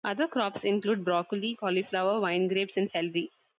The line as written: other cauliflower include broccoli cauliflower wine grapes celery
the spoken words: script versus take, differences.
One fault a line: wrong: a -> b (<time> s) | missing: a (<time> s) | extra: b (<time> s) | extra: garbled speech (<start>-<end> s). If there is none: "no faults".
wrong: cauliflower -> crops (0.3 s)
extra: and (2.8 s)